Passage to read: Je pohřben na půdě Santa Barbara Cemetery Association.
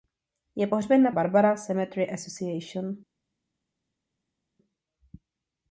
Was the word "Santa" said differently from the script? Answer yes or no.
yes